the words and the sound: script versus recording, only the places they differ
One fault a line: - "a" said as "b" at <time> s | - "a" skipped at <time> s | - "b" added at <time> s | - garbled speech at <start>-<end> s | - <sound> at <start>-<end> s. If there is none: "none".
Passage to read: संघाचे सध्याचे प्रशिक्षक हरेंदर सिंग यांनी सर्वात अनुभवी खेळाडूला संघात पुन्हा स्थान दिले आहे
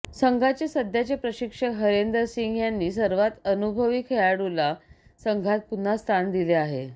none